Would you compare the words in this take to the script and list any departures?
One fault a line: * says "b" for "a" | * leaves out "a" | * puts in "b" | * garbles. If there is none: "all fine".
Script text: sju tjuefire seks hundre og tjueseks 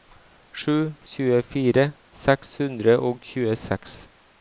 all fine